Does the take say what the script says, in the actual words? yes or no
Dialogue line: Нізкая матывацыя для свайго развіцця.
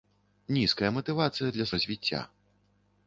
no